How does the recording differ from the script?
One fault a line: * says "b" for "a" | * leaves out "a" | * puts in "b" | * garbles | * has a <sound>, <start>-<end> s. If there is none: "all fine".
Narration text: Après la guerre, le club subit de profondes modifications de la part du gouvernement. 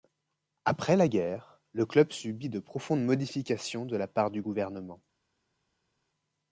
all fine